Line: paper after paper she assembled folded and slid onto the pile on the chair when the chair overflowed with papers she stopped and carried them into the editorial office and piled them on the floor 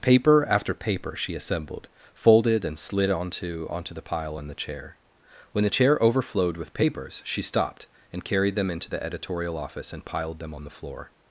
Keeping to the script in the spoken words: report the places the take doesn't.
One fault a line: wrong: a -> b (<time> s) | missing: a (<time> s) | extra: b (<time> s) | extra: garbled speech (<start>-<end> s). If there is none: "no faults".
extra: onto (3.7 s)